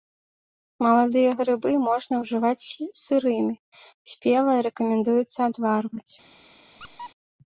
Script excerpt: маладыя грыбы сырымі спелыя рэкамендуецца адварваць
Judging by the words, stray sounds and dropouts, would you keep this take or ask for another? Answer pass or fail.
fail